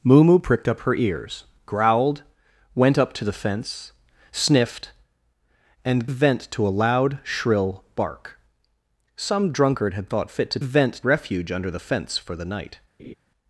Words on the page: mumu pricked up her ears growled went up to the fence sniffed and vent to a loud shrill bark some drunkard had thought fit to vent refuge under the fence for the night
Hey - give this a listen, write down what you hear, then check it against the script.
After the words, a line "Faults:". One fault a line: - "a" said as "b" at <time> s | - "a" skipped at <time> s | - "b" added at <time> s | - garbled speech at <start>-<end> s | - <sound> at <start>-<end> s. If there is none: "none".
mumu pricked up her ears growled went up to the fence sniffed and vent to a loud shrill bark some drunkard had thought fit to vent refuge under the fence for the night
Faults:
- laugh at 13.0-13.1 s